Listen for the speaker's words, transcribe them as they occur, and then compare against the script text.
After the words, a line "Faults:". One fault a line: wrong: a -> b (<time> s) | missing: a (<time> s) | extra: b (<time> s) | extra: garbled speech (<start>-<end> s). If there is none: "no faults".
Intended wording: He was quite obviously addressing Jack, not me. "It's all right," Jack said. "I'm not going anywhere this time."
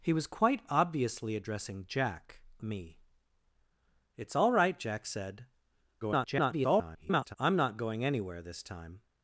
He was quite obviously addressing Jack, me. "It's all right," Jack said. [garbled] "I'm not going anywhere this time."
Faults:
missing: not (2.4 s)
extra: garbled speech (6.0-7.4 s)